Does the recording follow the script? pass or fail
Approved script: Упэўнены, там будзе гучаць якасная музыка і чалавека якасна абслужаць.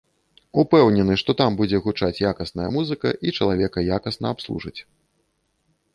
fail